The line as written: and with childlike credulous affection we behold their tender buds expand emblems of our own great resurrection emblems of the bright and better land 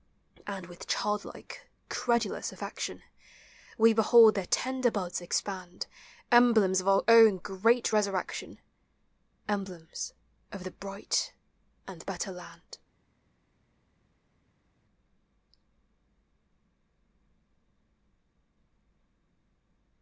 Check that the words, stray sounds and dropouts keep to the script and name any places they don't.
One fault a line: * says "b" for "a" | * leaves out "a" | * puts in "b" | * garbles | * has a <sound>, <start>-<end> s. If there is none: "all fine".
all fine